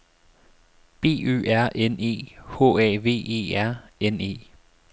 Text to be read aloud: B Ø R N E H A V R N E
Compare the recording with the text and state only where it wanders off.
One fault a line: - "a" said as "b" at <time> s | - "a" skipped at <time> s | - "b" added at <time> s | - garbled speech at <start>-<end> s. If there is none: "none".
- "E" added at 3.3 s